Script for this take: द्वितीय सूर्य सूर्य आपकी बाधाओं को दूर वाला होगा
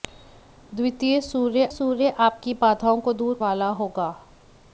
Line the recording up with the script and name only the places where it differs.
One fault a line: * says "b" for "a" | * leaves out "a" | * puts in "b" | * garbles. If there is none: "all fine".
all fine